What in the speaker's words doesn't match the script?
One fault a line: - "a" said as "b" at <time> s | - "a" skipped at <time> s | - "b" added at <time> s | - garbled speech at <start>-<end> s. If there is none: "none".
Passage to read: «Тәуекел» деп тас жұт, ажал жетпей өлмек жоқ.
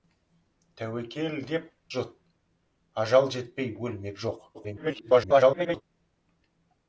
- "тас" skipped at 1.7 s
- garbled speech at 4.5-5.8 s